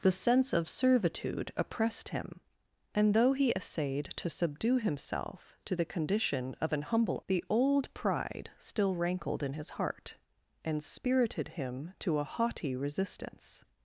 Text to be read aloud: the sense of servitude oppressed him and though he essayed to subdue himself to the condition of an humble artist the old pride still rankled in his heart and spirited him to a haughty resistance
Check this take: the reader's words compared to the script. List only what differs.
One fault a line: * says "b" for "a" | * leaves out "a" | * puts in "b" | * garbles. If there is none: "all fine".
* leaves out "artist"